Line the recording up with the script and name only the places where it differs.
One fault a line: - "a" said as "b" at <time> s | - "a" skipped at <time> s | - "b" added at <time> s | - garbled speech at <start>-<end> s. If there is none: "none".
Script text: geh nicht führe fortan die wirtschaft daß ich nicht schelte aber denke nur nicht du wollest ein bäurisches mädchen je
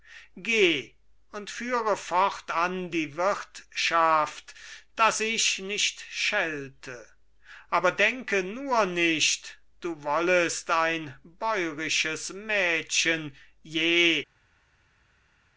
- "nicht" said as "und" at 1.3 s